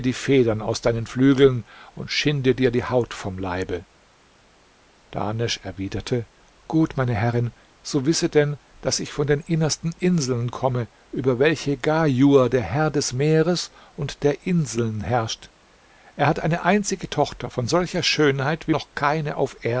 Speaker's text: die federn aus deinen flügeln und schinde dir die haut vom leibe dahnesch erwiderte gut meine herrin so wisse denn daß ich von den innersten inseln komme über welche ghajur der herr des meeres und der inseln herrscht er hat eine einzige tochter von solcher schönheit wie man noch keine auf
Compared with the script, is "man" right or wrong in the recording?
wrong